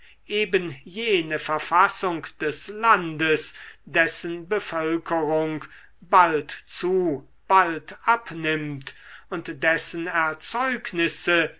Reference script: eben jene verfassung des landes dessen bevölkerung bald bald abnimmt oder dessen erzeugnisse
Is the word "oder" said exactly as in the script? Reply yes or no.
no